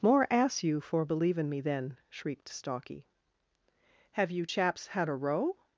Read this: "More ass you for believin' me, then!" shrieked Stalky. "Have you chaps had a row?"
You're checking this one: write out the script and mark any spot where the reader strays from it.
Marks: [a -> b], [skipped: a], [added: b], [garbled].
"More ass you for believin' me, then!" shrieked Stalky. "Have you chaps had a row?"